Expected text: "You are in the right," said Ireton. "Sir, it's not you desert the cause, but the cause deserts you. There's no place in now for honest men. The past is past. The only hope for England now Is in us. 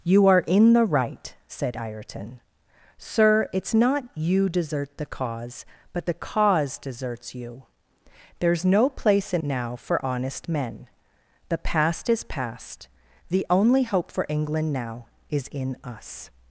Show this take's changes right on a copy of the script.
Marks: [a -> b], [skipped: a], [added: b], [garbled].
"You are in the right," said Ireton. "Sir, it's not you desert the cause, but the cause deserts you. There's no place in now for honest men. The past is past. The only hope for England now Is in us.